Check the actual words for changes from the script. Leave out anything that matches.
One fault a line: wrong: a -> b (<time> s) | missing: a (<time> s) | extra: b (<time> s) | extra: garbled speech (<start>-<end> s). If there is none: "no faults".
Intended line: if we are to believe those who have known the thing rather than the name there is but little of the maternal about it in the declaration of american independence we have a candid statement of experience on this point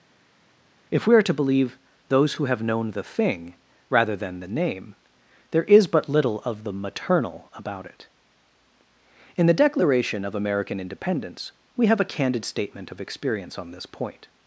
no faults